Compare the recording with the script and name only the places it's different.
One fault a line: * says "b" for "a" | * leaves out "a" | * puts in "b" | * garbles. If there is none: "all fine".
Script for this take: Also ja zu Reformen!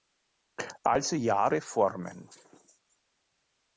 * leaves out "zu"